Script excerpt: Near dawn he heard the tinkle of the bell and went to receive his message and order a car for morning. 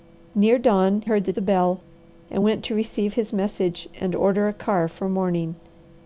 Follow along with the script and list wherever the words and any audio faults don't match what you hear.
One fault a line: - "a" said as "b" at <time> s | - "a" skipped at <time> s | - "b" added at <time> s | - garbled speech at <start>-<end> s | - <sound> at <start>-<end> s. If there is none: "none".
- "he" skipped at 1.0 s
- "tinkle of" skipped at 1.3 s